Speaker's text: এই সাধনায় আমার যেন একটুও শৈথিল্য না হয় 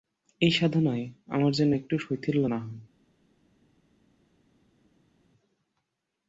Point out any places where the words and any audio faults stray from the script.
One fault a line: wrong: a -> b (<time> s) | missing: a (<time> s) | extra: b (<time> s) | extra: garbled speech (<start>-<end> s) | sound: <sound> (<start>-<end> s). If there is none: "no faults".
no faults